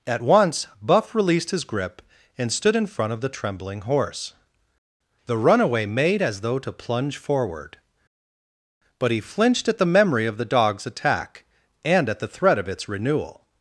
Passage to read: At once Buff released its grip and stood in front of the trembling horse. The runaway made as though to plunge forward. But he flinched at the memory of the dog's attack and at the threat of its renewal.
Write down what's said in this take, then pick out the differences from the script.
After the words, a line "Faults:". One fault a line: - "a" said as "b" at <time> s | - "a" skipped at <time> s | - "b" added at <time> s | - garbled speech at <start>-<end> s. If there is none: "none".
At once Buff released his grip and stood in front of the trembling horse. The runaway made as though to plunge forward. But he flinched at the memory of the dog's attack and at the threat of its renewal.
Faults:
- "its" said as "his" at 1.5 s